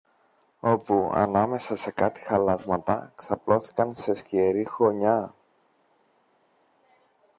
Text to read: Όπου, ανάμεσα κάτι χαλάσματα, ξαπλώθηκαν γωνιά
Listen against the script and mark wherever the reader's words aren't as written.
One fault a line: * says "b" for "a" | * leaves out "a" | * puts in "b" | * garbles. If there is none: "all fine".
* puts in "σε"
* puts in "σε σκιερή"